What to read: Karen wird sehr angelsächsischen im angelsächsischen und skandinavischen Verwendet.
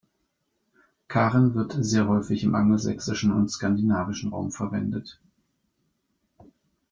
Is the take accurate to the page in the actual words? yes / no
no